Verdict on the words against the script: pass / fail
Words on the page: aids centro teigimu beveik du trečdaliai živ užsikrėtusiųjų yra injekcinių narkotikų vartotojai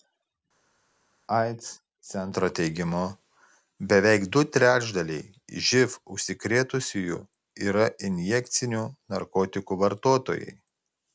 pass